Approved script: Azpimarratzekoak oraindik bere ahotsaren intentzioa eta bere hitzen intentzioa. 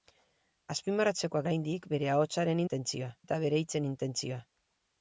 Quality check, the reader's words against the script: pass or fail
pass